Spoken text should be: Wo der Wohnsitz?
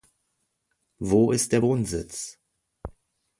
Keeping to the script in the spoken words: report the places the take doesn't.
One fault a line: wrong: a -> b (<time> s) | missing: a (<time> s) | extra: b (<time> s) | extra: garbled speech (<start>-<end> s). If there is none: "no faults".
extra: ist (1.3 s)